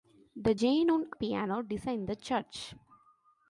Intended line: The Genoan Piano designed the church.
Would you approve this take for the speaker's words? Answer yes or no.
yes